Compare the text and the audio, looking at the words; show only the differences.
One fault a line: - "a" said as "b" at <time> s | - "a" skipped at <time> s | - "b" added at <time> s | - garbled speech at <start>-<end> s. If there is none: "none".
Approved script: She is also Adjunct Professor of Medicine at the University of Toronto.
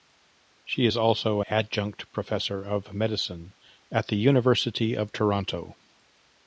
none